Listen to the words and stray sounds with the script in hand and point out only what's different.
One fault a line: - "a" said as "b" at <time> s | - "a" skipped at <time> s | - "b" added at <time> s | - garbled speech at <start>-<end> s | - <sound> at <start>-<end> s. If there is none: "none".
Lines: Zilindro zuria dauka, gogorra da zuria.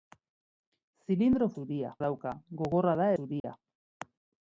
- dropout at 3.4-3.4 s